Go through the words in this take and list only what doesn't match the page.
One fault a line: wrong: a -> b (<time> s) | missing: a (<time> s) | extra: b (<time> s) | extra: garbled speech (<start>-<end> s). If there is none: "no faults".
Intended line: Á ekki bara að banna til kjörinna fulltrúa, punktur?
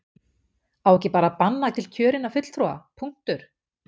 no faults